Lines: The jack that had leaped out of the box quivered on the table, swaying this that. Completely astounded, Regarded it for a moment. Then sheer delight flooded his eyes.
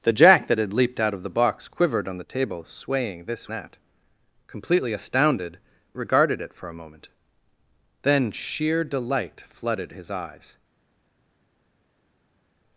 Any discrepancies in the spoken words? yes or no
no